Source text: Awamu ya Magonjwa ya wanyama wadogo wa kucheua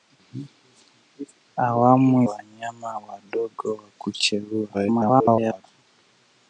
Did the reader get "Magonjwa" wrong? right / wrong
wrong